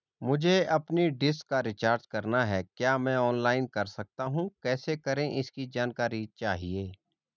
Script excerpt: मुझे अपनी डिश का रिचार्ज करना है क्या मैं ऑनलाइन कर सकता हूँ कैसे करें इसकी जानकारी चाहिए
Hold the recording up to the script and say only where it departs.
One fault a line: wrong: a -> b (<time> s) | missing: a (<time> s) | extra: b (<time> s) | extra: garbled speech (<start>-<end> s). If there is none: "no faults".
no faults